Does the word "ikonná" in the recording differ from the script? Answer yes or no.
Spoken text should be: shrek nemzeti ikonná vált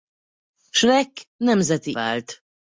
yes